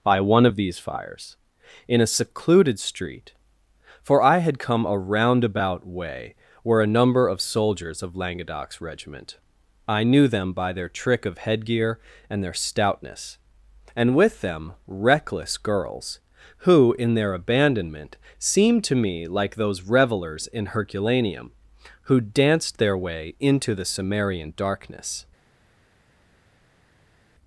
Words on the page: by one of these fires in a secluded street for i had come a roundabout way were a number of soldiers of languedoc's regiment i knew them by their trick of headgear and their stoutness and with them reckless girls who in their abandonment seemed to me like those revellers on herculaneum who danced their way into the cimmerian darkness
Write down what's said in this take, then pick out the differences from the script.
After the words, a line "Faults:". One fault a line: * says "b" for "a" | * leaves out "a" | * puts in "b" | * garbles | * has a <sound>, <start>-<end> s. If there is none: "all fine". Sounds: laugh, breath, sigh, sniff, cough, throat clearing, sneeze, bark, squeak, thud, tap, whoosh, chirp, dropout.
by one of these fires in a secluded street for i had come a roundabout way were a number of soldiers of languedoc's regiment i knew them by their trick of headgear and their stoutness and with them reckless girls who in their abandonment seemed to me like those revellers in herculaneum who danced their way into the cimmerian darkness
Faults:
* says "in" for "on"